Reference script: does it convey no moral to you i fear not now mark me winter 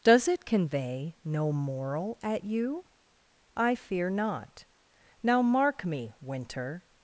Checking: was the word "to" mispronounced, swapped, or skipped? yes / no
yes